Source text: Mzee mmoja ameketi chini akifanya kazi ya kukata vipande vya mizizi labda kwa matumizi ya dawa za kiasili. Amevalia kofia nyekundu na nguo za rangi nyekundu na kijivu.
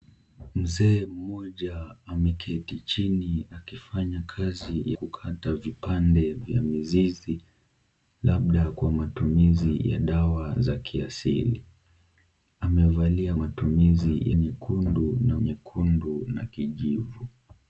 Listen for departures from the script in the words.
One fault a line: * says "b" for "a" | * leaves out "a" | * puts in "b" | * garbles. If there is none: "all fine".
* leaves out "ya"
* says "matumizi" for "kofia"
* leaves out "nguo za rangi"